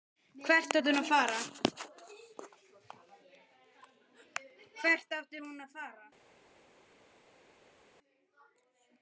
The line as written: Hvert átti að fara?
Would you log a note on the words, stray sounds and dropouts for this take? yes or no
yes